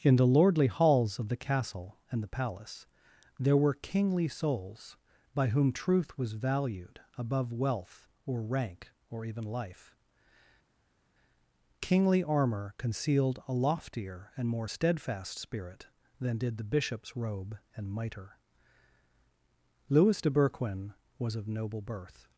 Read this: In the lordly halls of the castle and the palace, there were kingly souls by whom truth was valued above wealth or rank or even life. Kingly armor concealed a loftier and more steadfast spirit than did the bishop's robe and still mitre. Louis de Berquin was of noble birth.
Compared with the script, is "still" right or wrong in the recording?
wrong